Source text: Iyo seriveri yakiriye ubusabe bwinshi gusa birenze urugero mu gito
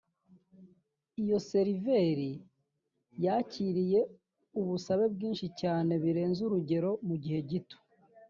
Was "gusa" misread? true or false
true